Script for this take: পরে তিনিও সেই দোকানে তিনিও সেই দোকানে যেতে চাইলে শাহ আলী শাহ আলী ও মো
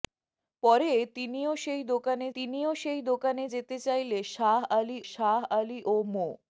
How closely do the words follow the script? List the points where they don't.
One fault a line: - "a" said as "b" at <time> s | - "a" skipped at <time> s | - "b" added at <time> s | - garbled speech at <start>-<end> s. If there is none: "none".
none